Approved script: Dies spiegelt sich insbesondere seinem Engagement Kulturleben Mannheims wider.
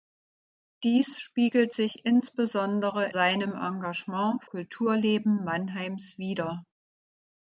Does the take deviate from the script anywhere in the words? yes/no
no